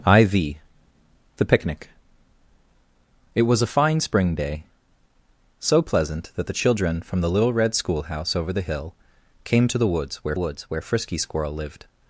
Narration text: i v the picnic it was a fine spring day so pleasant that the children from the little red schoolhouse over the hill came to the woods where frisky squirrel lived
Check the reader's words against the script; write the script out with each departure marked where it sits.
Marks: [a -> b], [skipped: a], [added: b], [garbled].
i v the picnic it was a fine spring day so pleasant that the children from the little red schoolhouse over the hill came to the woods where [added: woods where] frisky squirrel lived